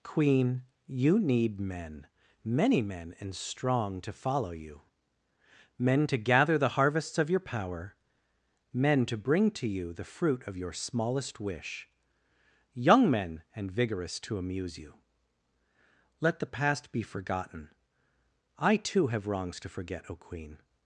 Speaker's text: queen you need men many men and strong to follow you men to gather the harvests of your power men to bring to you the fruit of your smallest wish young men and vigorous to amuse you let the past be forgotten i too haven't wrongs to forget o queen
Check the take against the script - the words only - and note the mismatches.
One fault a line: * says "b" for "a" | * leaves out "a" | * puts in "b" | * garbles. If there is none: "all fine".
* says "have" for "haven't"